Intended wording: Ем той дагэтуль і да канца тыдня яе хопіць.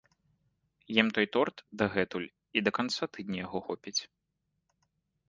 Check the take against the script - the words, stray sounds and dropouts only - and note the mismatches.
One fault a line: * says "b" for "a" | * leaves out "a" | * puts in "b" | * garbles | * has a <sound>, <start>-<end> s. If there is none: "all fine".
* puts in "торт"
* says "яго" for "яе"